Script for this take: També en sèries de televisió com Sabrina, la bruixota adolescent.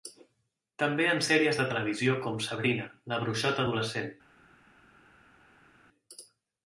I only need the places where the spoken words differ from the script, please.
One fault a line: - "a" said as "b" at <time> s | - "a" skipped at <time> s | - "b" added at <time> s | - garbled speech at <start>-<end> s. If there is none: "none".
none